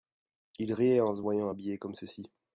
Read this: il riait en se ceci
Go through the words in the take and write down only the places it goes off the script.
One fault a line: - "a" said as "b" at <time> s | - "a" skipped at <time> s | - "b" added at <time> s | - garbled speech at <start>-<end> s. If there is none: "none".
- "voyant habillé comme" added at 1.2 s